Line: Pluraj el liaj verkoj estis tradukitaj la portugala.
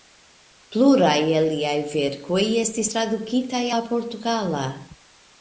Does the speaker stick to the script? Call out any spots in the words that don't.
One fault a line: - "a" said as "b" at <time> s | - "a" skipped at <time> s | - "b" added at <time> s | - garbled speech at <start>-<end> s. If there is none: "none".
none